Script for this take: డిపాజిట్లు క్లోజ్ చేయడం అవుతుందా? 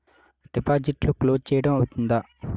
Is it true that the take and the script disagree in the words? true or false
false